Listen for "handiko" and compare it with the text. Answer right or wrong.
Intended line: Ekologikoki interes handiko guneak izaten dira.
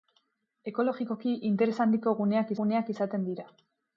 right